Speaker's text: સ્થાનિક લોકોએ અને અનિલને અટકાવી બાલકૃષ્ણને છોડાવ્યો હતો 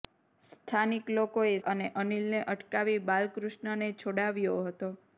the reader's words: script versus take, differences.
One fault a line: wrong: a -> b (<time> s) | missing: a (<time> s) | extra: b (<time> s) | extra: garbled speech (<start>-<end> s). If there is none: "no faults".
no faults